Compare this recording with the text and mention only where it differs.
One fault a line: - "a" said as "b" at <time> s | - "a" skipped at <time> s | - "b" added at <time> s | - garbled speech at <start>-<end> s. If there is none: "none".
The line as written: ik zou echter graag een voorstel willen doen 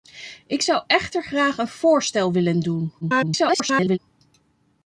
- garbled speech at 3.0-4.0 s